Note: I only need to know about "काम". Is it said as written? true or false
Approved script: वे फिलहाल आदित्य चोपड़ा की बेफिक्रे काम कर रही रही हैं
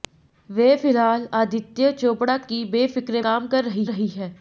true